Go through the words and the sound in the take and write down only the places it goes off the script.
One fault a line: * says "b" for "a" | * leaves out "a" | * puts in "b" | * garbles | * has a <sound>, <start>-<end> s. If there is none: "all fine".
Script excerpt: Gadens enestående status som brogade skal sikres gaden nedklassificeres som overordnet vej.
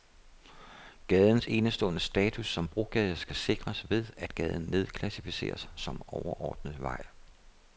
* puts in "ved at"